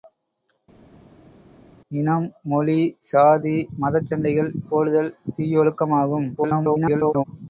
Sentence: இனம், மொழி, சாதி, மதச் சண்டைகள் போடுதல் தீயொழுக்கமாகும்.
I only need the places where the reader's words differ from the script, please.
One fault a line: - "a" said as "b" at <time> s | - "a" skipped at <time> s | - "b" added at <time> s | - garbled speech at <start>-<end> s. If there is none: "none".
- garbled speech at 6.4-7.2 s